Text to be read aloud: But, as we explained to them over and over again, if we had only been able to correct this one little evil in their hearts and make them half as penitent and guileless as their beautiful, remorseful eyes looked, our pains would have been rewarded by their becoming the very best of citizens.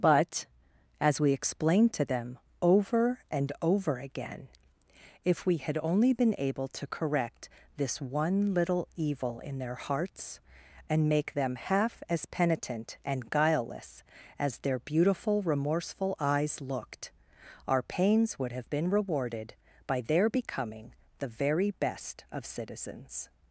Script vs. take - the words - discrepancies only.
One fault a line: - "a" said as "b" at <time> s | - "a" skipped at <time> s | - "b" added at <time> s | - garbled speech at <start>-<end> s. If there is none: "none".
none